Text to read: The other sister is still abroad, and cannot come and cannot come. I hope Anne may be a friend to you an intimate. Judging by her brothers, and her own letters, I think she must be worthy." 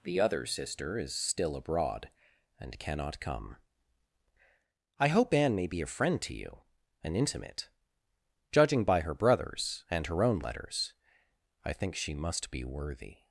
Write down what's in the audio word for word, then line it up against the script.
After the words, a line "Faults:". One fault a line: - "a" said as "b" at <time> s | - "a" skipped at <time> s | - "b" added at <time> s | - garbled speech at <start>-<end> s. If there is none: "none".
The other sister is still abroad, and cannot come. I hope Anne may be a friend to you an intimate. Judging by her brothers, and her own letters, I think she must be worthy."
Faults:
- "and cannot come" skipped at 3.6 s